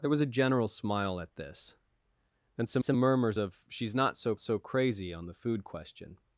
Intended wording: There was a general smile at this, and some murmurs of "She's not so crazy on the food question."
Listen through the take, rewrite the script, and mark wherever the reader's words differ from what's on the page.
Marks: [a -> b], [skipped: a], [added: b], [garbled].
There was a general smile at this, and some [added: some] murmurs of "She's not so [added: so] crazy on the food question."